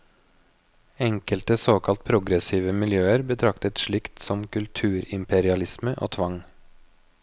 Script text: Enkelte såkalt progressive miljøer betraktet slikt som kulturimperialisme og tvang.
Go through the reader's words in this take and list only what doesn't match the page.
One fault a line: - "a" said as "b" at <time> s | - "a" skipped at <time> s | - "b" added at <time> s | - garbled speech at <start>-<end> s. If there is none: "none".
none